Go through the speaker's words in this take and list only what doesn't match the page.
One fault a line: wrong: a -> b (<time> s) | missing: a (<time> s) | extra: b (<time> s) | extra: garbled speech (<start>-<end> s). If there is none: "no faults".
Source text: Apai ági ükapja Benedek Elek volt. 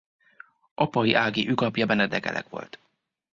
no faults